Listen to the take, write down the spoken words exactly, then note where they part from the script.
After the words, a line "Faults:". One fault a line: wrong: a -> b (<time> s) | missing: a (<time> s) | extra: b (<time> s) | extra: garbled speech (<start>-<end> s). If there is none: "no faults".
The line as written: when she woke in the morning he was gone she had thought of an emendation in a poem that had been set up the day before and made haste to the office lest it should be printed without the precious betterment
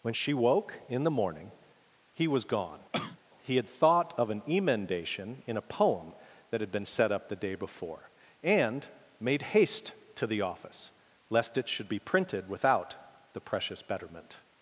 when she woke in the morning he was gone he had thought of an emendation in a poem that had been set up the day before and made haste to the office lest it should be printed without the precious betterment
Faults:
wrong: she -> he (3.4 s)